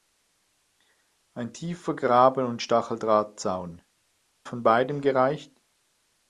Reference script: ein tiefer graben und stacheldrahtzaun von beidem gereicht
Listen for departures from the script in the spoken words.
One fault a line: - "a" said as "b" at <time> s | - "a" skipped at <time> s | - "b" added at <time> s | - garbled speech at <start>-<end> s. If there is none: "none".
none